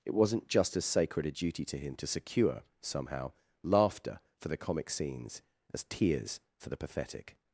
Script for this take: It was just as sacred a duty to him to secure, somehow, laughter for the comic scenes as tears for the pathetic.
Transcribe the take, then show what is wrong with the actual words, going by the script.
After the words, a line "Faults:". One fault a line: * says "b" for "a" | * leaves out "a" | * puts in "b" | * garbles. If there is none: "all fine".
It wasn't just as sacred a duty to him to secure, somehow, laughter for the comic scenes as tears for the pathetic.
Faults:
* says "wasn't" for "was"